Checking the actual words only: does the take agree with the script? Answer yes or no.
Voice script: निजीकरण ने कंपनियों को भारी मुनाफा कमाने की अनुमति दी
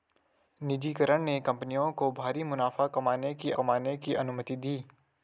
no